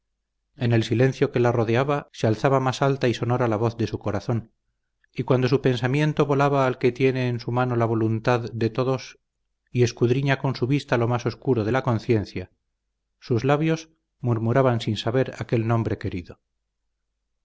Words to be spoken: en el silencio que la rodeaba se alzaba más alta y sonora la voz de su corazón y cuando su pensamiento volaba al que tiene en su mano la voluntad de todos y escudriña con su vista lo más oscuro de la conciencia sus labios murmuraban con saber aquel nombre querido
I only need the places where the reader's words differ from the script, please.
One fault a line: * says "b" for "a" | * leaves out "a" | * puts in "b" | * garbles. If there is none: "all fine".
* says "sin" for "con"